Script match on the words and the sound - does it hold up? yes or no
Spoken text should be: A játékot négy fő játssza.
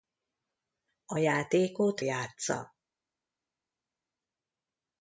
no